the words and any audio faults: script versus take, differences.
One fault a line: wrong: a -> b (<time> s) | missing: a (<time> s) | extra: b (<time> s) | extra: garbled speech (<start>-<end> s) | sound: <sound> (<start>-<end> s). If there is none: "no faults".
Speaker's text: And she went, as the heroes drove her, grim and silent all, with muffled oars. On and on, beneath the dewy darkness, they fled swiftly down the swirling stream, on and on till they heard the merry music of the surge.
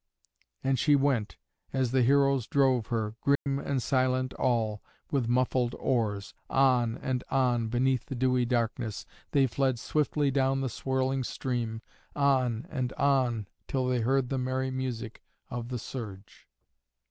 sound: dropout (3.4-3.5 s)